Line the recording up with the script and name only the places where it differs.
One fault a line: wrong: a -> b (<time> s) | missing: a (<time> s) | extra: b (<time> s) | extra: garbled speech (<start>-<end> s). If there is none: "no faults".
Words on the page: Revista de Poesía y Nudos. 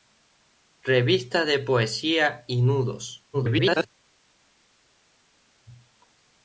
extra: garbled speech (3.3-3.9 s)